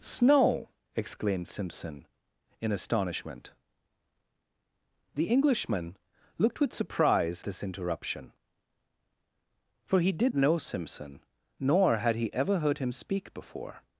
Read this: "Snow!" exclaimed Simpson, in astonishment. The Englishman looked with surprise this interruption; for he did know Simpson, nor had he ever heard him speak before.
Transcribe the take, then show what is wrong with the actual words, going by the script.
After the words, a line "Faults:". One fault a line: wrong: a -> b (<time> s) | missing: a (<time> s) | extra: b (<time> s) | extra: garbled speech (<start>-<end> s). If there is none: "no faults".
"Snow!" exclaimed Simpson, in astonishment. The Englishman looked with surprise this interruption; for he did know Simpson, nor had he ever heard him speak before.
Faults:
no faults